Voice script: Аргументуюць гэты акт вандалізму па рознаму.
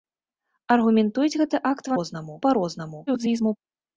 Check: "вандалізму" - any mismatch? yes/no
yes